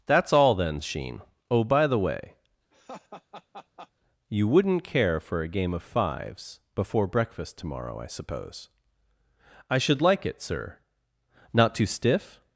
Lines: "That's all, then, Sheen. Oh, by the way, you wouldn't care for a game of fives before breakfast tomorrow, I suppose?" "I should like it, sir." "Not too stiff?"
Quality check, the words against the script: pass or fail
pass